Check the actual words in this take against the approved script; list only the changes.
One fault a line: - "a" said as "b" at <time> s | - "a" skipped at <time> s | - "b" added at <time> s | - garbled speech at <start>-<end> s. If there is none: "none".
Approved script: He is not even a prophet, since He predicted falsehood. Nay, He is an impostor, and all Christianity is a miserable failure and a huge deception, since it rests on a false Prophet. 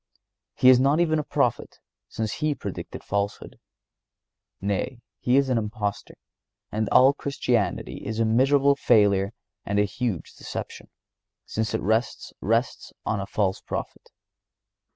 - "rests" added at 12.4 s